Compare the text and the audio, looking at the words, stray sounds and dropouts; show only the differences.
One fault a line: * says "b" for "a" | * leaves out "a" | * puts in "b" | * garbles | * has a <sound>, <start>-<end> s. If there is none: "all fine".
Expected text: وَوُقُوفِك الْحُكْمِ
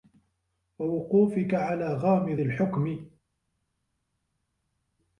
* puts in "عَلَى غَامِضِ"